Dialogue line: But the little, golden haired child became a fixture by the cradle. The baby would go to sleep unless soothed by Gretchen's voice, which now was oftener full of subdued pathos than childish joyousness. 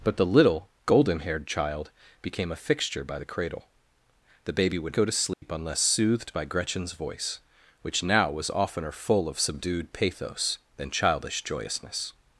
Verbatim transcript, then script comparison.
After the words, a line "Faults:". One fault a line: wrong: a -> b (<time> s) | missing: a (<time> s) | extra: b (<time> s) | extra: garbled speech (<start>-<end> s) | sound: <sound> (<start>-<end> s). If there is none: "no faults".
But the little, golden haired child became a fixture by the cradle. The baby would go to sleep unless soothed by Gretchen's voice, which now was oftener full of subdued pathos than childish joyousness.
Faults:
sound: dropout (5.3-5.4 s)